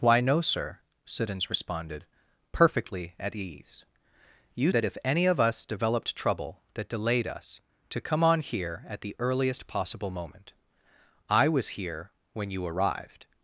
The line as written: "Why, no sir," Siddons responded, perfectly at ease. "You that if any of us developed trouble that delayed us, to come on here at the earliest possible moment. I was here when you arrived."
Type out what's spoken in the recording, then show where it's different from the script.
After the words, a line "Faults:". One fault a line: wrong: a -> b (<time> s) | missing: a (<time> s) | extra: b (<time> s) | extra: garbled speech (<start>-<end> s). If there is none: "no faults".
"Why, no sir," Siddons responded, perfectly at ease. "You that if any of us developed trouble that delayed us, to come on here at the earliest possible moment. I was here when you arrived."
Faults:
no faults